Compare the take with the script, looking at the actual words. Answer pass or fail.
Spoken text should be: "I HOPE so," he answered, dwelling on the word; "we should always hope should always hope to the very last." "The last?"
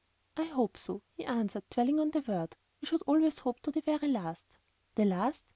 fail